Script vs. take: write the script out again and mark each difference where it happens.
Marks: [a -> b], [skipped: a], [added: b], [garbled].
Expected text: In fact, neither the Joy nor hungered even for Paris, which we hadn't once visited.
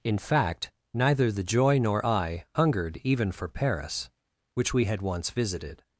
In fact, neither the Joy nor [added: I] hungered even for Paris, which we [hadn't -> had] once visited.